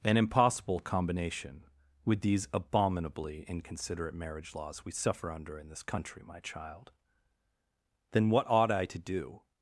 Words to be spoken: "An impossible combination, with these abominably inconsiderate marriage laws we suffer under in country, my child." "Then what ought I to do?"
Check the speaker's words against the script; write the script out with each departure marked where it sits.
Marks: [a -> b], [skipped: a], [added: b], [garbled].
"An impossible combination, with these abominably inconsiderate marriage laws we suffer under in [added: this] country, my child." "Then what ought I to do?"